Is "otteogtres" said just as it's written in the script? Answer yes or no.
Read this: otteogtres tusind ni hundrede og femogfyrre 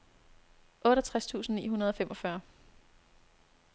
yes